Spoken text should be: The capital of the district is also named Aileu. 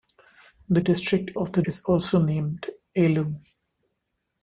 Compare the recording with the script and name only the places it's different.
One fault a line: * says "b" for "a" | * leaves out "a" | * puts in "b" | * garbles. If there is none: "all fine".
* says "district" for "capital"
* leaves out "district"